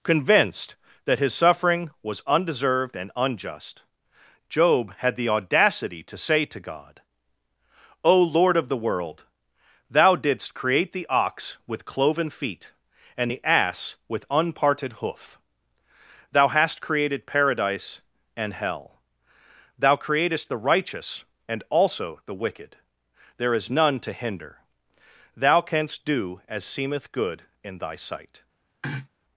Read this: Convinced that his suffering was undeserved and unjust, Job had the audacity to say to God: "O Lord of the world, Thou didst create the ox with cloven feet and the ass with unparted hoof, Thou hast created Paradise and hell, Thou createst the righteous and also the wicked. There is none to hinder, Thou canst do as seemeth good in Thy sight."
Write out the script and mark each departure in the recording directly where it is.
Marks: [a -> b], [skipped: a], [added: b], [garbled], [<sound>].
Convinced that his suffering was undeserved and unjust, Job had the audacity to say to God: "O Lord of the world, Thou didst create the ox with cloven feet and the ass with unparted hoof, Thou hast created Paradise and hell, Thou createst the righteous and also the wicked. There is none to hinder, Thou canst do as seemeth good in Thy sight." [throat clearing]